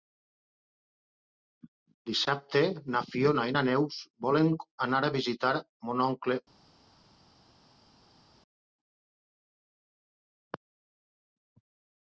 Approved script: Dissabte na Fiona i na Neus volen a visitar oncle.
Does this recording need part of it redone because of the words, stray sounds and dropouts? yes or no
yes